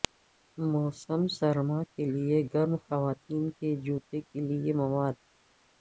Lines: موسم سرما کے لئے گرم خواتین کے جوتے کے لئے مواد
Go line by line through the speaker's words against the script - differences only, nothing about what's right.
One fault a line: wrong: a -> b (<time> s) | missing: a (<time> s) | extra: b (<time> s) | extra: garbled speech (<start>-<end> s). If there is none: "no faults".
no faults